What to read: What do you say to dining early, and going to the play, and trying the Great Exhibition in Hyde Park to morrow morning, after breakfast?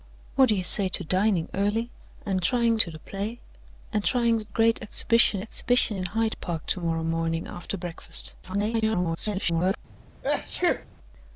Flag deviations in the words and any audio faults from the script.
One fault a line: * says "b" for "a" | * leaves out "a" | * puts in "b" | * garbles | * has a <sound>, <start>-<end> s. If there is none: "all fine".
* says "trying" for "going"
* puts in "Exhibition"
* garbles
* has a sneeze, 10.2-10.9 s